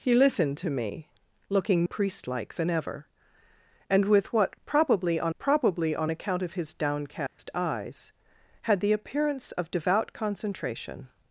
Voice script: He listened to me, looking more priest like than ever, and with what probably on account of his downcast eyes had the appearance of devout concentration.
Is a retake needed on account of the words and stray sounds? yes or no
yes